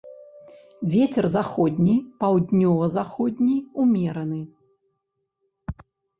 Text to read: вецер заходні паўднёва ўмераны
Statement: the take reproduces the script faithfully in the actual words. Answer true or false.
false